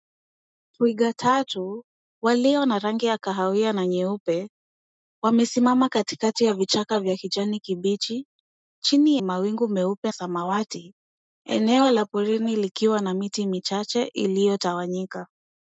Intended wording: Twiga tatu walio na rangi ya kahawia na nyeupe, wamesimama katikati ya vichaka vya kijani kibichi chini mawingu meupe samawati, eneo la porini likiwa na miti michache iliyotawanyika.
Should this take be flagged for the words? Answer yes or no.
no